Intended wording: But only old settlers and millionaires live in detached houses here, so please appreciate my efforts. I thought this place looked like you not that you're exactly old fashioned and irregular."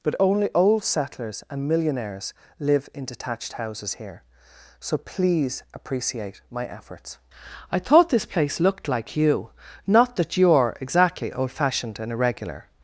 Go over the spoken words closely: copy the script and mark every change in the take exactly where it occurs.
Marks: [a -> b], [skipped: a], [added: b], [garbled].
But only old settlers and millionaires live in detached houses here, so please appreciate my efforts. I thought this place looked like you not that you're exactly old fashioned and irregular."